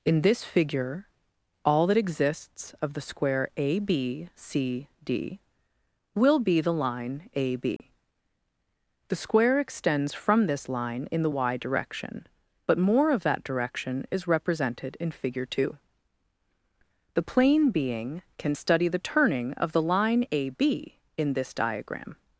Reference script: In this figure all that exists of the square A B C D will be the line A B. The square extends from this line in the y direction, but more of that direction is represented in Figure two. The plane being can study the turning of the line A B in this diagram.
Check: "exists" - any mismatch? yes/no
no